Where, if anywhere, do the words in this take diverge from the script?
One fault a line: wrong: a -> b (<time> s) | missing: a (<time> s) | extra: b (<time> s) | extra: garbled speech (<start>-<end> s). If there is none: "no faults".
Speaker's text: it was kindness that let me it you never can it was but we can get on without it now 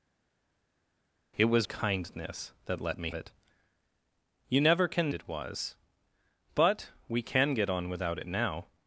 no faults